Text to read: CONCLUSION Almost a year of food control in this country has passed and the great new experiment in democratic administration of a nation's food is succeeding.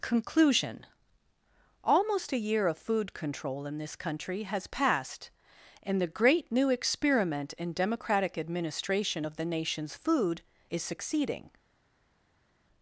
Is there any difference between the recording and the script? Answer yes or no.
yes